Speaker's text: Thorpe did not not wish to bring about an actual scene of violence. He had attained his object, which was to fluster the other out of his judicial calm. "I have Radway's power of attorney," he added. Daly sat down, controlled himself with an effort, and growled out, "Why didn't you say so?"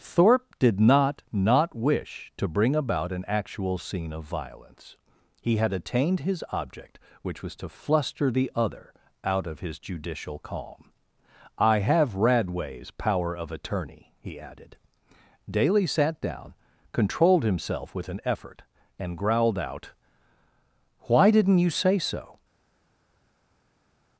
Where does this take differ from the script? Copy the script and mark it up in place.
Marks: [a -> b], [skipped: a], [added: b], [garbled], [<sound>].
Thorpe did not not wish to bring about an actual scene of violence. He had attained his object, which was to fluster the other out of his judicial calm. "I have Radway's power of attorney," he added. Daly sat down, controlled himself with an effort, and growled out, "Why didn't you say so?"